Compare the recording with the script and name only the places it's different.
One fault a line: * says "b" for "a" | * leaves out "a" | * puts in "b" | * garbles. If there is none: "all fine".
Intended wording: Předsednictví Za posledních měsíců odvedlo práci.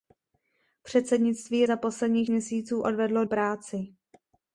all fine